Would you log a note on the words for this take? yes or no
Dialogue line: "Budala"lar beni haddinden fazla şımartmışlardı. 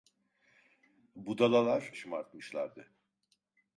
yes